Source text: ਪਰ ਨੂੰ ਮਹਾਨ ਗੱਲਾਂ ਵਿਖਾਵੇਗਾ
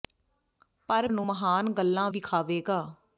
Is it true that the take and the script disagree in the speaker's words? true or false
false